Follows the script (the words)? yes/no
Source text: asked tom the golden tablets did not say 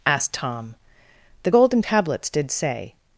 no